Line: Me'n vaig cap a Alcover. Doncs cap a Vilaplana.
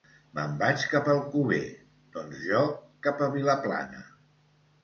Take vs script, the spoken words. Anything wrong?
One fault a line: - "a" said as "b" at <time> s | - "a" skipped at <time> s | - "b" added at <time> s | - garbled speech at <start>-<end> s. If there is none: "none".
- "jo" added at 2.5 s